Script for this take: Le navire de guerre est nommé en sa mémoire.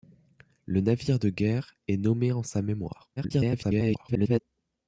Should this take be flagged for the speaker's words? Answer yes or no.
yes